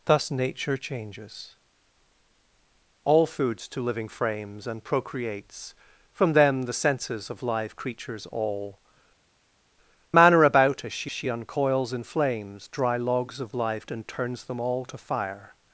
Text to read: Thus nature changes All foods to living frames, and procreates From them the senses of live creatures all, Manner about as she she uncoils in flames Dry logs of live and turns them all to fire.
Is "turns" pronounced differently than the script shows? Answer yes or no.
no